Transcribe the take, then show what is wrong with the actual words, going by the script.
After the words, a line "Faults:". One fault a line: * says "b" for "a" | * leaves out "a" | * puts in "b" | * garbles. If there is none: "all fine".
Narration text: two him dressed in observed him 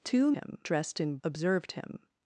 two him dressed in observed him
Faults:
all fine